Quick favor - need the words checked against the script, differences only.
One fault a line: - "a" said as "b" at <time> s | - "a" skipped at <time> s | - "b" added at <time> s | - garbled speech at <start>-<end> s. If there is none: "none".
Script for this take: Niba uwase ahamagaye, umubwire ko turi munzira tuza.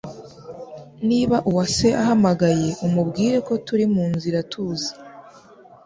none